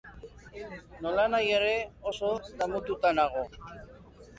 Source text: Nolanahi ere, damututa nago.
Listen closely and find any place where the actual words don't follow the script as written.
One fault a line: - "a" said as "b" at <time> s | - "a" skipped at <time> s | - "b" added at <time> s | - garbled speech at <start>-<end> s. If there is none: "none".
- "oso" added at 2.1 s